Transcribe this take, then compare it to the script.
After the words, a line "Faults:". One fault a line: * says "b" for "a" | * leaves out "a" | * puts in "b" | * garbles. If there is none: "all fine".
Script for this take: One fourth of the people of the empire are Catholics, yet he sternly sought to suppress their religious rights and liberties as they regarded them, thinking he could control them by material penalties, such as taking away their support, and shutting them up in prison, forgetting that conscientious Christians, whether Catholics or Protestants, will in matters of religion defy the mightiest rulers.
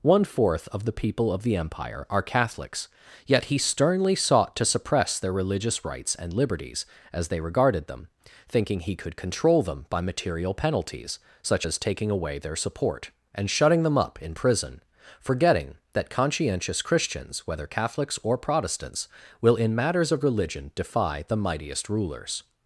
One fourth of the people of the empire are Catholics, yet he sternly sought to suppress their religious rights and liberties as they regarded them, thinking he could control them by material penalties, such as taking away their support, and shutting them up in prison, forgetting that conscientious Christians, whether Catholics or Protestants, will in matters of religion defy the mightiest rulers.
Faults:
all fine